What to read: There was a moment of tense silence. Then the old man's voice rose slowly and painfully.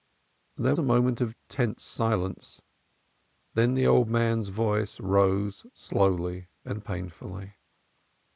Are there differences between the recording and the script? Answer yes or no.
yes